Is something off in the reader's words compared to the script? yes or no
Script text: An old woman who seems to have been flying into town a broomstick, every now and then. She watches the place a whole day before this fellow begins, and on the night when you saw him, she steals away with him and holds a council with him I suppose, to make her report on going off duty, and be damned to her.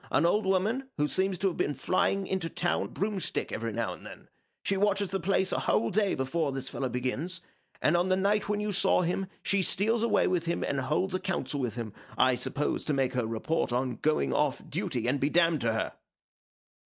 no